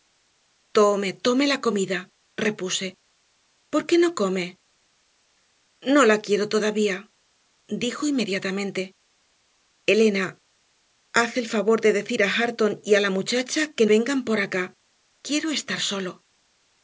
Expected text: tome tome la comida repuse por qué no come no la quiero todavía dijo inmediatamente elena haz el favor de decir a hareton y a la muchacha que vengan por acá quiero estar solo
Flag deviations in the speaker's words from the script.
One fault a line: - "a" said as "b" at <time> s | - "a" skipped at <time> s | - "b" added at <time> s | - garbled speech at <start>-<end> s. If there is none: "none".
none